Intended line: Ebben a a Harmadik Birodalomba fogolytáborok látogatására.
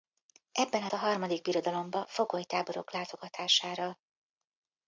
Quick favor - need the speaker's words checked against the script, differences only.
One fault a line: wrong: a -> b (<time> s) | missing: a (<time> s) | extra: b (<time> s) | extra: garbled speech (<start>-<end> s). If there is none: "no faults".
no faults